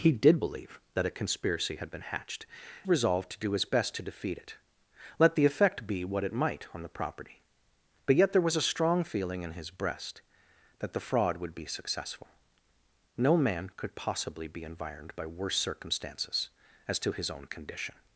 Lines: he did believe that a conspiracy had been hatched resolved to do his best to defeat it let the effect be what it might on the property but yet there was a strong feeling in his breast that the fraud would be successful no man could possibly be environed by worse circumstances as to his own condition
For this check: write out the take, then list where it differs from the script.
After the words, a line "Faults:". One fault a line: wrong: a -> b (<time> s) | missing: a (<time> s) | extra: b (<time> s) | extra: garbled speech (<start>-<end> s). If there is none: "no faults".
he did believe that a conspiracy had been hatched resolved to do his best to defeat it let the effect be what it might on the property but yet there was a strong feeling in his breast that the fraud would be successful no man could possibly be environed by worse circumstances as to his own condition
Faults:
no faults